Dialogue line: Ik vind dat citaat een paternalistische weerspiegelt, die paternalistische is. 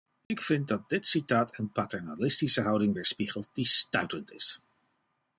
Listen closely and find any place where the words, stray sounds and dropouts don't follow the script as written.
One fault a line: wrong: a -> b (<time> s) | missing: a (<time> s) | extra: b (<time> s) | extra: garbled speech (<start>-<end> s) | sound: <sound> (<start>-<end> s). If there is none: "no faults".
sound: dropout (0.2-0.3 s)
extra: dit (0.9 s)
extra: houding (2.6 s)
wrong: paternalistische -> stuitend (3.7 s)